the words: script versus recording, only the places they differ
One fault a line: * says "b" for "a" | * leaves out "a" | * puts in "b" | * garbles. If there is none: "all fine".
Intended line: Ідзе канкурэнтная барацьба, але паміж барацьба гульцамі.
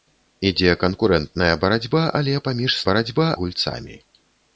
all fine